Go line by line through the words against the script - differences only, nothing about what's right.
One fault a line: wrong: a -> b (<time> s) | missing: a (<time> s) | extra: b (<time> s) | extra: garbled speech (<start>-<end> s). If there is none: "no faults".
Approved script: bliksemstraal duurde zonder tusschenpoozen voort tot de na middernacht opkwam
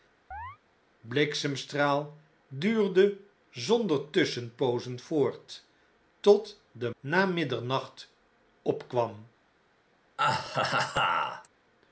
no faults